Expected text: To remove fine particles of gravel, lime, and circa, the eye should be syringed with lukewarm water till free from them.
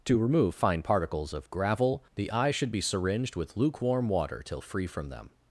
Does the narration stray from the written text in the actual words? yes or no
yes